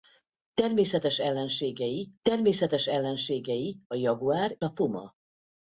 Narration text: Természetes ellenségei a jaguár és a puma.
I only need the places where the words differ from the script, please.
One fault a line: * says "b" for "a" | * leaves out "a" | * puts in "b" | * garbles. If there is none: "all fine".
* puts in "természetes ellenségei"
* leaves out "és"